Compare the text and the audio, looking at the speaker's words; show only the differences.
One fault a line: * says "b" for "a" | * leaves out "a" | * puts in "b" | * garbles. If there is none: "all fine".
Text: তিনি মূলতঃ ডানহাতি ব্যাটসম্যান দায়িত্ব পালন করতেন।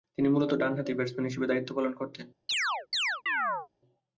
* puts in "হিসেবে"